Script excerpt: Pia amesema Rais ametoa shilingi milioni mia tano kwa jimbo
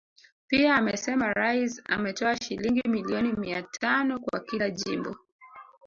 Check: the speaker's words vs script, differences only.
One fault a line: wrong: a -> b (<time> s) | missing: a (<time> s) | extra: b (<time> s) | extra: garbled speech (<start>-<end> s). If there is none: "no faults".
extra: kila (4.4 s)